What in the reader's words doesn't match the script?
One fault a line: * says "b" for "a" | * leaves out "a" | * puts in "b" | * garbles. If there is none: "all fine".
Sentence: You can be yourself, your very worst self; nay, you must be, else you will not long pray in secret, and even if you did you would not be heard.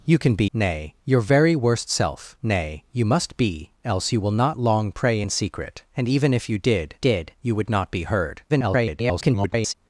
* says "nay" for "yourself"
* puts in "did"
* garbles